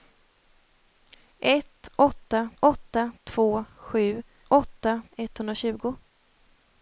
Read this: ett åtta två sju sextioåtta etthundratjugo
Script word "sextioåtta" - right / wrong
wrong